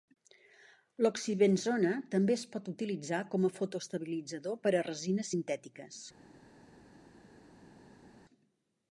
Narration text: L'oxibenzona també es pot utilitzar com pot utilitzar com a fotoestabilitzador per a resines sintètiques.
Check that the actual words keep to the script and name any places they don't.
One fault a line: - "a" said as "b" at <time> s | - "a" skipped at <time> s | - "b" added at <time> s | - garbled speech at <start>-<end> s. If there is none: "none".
- "pot utilitzar com" skipped at 3.5 s